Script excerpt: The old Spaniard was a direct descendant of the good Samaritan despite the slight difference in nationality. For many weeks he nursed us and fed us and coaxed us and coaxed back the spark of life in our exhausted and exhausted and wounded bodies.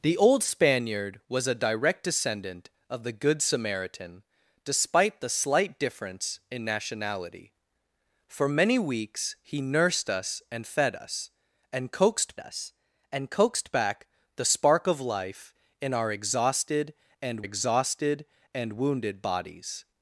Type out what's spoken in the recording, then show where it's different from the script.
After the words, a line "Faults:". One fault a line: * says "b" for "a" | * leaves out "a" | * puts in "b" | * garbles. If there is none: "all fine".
The old Spaniard was a direct descendant of the good Samaritan despite the slight difference in nationality. For many weeks he nursed us and fed us and coaxed us and coaxed back the spark of life in our exhausted and exhausted and wounded bodies.
Faults:
all fine